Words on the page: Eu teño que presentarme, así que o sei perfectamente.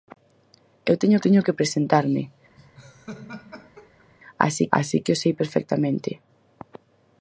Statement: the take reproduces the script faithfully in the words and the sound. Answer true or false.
false